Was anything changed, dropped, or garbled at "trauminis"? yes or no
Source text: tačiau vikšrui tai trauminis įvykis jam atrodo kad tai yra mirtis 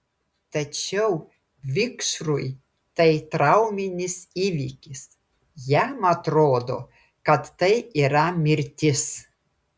no